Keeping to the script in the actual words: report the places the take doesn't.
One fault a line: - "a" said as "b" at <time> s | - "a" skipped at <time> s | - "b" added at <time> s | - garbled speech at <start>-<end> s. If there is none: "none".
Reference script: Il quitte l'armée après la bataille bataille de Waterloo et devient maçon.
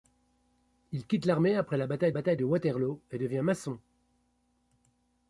none